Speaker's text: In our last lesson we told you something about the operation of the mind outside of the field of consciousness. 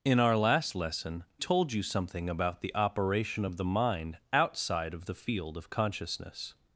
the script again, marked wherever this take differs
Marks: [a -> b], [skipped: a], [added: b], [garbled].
In our last lesson [skipped: we] told you something about the operation of the mind outside of the field of consciousness.